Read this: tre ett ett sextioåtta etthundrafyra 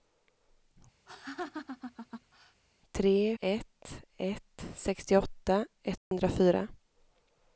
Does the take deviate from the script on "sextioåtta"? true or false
false